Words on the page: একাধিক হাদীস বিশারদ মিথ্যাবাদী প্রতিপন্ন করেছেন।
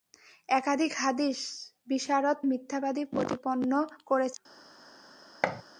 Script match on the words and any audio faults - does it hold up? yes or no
no